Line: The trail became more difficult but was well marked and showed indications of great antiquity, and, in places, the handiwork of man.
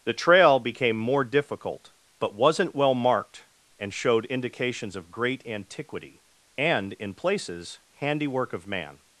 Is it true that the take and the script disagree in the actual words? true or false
true